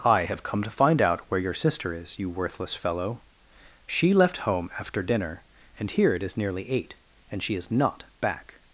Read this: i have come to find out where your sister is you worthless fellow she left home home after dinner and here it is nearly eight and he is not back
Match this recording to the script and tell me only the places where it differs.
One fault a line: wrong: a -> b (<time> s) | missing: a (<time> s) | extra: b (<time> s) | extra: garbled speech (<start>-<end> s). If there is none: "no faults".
missing: home (4.7 s)
wrong: he -> she (7.4 s)